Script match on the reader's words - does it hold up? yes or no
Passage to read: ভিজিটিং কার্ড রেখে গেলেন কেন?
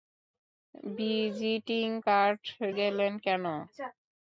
no